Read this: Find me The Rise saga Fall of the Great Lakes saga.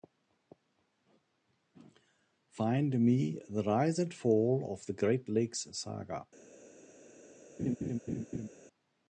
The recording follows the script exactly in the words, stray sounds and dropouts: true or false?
false